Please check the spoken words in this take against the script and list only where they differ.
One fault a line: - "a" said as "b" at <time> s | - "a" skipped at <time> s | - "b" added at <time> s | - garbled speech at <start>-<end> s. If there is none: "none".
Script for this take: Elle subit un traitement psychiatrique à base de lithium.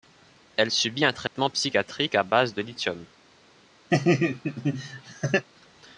none